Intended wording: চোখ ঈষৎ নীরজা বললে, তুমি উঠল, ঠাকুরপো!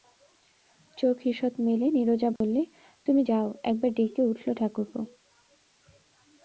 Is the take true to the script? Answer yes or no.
no